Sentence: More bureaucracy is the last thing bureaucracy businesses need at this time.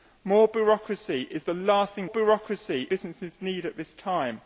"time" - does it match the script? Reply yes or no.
yes